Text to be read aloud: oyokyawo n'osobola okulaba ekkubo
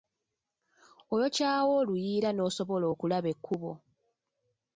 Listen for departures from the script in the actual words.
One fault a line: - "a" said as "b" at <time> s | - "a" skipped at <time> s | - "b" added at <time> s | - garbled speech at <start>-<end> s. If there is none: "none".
- "oluyiira" added at 1.8 s